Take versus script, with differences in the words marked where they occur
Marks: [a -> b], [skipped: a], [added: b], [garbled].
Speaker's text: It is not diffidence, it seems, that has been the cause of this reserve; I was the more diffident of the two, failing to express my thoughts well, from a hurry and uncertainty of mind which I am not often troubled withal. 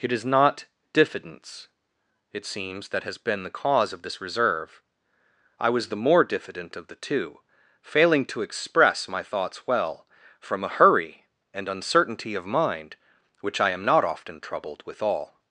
It is not diffidence, it seems, that has been the cause of this reserve; I was the more diffident of the two, failing to express my thoughts well, from a hurry and uncertainty of mind which I am not often troubled withal.